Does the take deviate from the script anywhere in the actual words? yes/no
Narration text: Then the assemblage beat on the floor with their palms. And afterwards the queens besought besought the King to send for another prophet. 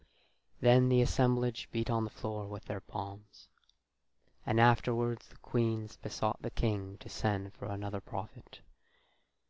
yes